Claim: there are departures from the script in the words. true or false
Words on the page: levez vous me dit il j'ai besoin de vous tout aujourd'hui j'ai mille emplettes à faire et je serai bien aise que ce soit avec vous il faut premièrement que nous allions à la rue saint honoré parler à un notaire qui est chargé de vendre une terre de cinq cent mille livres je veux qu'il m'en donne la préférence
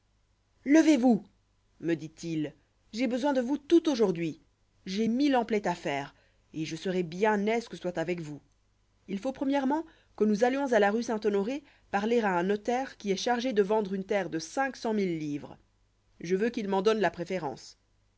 true